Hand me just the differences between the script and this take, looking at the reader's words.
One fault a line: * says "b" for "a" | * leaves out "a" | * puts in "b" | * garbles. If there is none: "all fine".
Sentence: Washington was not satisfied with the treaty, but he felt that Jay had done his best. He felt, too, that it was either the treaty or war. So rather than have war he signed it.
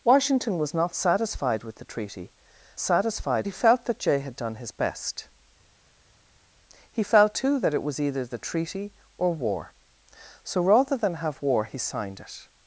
* says "satisfied" for "but"